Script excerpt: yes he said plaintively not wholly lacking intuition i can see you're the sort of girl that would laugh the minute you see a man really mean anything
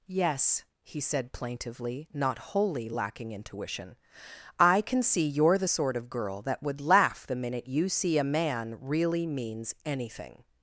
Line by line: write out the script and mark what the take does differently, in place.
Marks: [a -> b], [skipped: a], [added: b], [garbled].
yes he said plaintively not wholly lacking intuition i can see you're the sort of girl that would laugh the minute you see a man really [mean -> means] anything